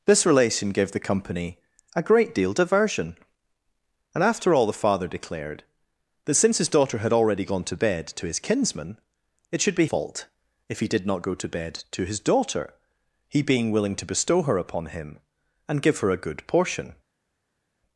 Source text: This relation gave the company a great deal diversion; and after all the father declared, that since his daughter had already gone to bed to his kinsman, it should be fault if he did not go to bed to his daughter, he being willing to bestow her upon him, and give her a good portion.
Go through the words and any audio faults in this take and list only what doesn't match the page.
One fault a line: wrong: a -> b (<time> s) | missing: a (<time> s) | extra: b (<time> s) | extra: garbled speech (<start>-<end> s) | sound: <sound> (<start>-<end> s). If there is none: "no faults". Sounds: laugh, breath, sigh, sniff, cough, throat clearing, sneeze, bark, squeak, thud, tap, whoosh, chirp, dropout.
no faults